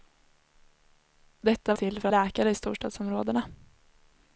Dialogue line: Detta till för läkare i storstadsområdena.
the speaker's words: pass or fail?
pass